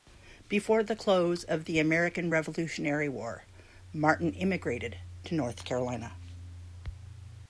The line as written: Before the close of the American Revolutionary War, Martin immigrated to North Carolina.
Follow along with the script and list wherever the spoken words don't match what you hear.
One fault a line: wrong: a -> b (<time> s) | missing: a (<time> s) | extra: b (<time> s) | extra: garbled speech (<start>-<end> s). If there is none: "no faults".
no faults